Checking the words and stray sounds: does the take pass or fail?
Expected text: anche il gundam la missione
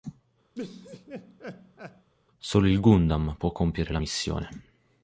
fail